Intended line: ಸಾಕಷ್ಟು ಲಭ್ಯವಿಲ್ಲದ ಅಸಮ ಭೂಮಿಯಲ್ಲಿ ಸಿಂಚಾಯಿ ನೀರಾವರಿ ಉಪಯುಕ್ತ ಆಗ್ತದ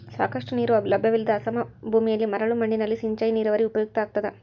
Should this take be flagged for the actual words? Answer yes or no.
yes